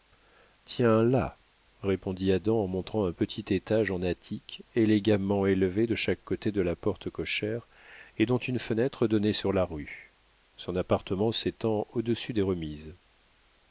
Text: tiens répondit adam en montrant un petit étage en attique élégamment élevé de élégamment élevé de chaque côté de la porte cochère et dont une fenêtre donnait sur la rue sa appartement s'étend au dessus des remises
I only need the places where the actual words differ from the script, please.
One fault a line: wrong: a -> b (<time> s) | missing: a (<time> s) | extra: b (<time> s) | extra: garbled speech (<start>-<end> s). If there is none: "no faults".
extra: là (1.0 s)
missing: élégamment élevé de (5.9 s)
wrong: sa -> son (10.6 s)